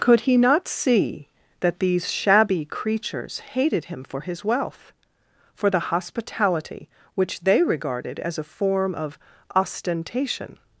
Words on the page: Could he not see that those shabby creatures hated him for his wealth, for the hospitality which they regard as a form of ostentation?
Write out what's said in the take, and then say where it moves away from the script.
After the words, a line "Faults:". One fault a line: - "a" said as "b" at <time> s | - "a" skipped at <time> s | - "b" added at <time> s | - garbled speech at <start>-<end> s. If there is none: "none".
Could he not see that these shabby creatures hated him for his wealth, for the hospitality which they regarded as a form of ostentation?
Faults:
- "those" said as "these" at 1.8 s
- "regard" said as "regarded" at 7.6 s